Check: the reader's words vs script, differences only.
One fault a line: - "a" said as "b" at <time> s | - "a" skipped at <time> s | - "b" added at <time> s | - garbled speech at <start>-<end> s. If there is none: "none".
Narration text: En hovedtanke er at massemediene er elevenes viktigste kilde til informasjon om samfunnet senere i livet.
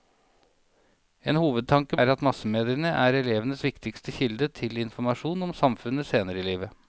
none